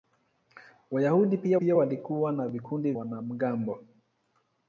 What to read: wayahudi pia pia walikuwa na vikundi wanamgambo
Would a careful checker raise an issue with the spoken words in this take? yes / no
no